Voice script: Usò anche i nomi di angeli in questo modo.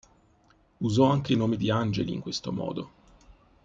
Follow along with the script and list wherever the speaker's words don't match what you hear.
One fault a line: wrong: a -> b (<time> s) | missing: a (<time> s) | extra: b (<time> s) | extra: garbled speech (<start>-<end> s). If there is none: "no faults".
no faults